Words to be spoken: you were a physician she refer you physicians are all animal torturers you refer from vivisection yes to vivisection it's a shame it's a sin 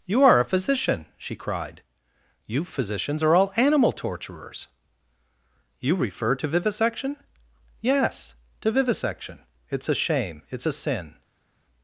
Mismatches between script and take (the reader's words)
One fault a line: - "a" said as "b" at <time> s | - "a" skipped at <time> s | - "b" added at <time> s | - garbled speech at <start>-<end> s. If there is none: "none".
- "were" said as "are" at 0.2 s
- "refer" said as "cried" at 1.4 s
- "from" said as "to" at 6.4 s